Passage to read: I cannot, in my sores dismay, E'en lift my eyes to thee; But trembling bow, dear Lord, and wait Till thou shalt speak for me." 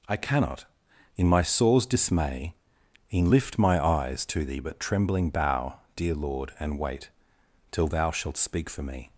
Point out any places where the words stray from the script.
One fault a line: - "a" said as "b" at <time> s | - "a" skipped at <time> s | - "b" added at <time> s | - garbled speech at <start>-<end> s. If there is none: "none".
none